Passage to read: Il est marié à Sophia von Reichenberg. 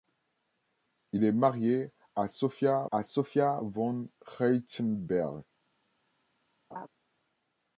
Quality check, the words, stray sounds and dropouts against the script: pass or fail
fail